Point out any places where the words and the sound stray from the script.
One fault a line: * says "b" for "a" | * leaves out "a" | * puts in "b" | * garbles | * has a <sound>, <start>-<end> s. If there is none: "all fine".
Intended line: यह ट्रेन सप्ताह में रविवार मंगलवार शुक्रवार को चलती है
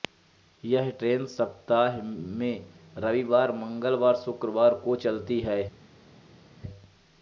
all fine